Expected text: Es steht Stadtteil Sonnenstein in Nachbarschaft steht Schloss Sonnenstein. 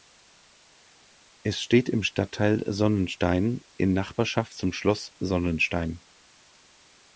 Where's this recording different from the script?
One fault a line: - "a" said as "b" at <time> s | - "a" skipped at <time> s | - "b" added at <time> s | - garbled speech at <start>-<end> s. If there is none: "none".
- "im" added at 1.9 s
- "steht" said as "zum" at 4.6 s